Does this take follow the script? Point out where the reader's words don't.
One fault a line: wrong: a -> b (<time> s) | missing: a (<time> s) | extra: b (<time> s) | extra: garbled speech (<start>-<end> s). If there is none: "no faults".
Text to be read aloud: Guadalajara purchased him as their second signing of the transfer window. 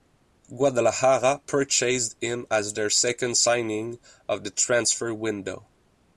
no faults